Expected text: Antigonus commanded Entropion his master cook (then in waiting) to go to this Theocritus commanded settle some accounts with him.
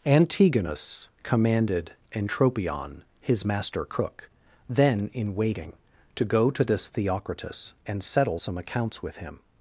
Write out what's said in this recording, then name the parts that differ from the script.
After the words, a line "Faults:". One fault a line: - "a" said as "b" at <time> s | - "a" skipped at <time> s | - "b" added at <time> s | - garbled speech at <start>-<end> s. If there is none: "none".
Antigonus commanded Entropion his master cook (then in waiting) to go to this Theocritus and settle some accounts with him.
Faults:
- "commanded" said as "and" at 7.8 s